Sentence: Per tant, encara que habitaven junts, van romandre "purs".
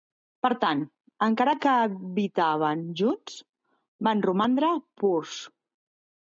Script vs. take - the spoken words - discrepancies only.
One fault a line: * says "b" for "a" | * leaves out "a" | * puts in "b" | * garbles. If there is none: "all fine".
all fine